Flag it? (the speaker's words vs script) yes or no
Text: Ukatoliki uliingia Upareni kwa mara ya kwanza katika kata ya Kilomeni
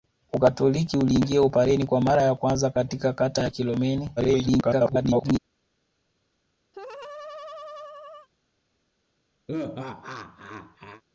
yes